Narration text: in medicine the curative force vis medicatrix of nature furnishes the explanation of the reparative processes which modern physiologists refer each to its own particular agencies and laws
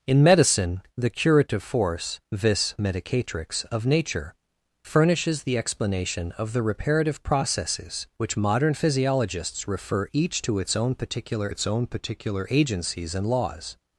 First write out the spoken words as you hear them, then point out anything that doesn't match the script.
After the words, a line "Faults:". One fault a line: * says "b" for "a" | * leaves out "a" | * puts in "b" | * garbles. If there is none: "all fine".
in medicine the curative force vis medicatrix of nature furnishes the explanation of the reparative processes which modern physiologists refer each to its own particular its own particular agencies and laws
Faults:
* puts in "its own particular"